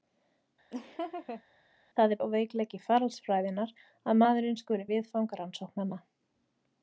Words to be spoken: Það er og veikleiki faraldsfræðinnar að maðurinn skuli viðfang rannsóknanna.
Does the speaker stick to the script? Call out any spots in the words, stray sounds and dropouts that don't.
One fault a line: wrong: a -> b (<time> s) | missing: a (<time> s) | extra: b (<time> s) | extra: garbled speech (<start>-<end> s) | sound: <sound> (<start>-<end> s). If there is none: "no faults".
sound: laugh (0.7-1.4 s)